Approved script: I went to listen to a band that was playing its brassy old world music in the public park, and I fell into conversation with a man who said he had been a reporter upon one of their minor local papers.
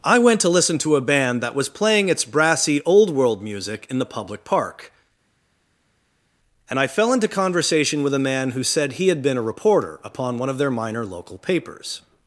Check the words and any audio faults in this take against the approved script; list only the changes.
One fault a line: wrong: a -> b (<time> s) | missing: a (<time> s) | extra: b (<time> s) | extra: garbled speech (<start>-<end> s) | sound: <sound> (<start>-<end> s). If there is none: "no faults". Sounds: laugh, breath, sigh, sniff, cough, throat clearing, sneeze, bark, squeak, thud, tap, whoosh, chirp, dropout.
no faults